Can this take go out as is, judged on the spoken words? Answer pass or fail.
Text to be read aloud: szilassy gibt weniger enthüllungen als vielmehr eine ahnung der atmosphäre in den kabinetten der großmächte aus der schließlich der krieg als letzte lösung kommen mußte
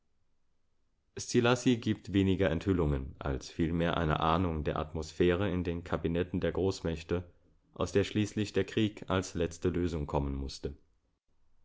pass